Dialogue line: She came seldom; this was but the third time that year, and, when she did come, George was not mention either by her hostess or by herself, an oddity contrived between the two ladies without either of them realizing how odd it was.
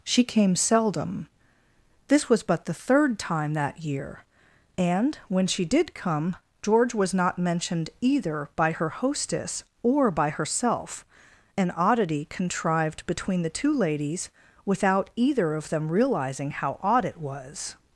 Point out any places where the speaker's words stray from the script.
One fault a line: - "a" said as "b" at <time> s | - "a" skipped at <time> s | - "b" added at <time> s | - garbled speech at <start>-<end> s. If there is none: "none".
- "mention" said as "mentioned" at 7.4 s